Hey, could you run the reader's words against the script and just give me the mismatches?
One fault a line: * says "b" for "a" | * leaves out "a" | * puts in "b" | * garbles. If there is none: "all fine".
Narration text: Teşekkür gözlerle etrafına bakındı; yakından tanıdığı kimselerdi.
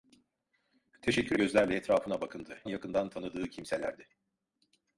all fine